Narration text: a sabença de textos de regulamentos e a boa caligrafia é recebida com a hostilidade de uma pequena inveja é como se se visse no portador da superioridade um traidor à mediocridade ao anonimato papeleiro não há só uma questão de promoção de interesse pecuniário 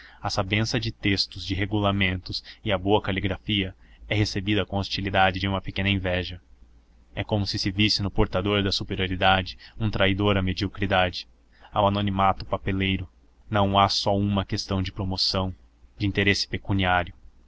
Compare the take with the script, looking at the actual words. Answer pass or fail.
pass